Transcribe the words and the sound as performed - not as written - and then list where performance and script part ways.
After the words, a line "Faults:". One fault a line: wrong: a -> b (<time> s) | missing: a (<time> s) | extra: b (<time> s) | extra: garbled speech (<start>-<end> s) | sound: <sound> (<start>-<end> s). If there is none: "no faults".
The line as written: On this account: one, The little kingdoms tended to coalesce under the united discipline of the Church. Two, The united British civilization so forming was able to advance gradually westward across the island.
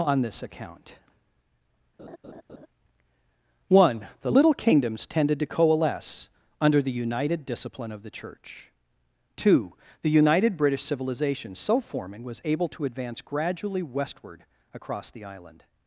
On this account: one, The little kingdoms tended to coalesce under the united discipline of the Church. Two, The united British civilization so forming was able to advance gradually westward across the island.
Faults:
sound: laugh (2.0-2.7 s)